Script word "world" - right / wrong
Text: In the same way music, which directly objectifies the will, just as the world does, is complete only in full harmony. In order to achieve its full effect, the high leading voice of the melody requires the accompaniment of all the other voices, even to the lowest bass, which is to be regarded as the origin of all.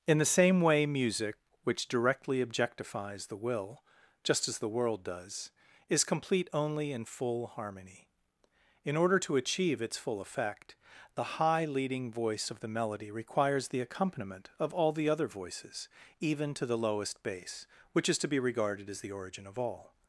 right